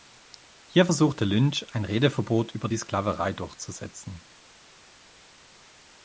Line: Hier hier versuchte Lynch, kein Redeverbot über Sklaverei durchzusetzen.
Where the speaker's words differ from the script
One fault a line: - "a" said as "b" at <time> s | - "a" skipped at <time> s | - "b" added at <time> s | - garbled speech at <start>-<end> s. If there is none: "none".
- "hier" skipped at 0.9 s
- "kein" said as "ein" at 1.7 s
- "die" added at 2.7 s